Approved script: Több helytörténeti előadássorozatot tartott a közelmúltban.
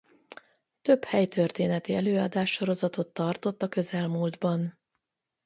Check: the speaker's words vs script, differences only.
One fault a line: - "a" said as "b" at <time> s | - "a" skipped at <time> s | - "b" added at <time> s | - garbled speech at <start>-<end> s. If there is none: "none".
none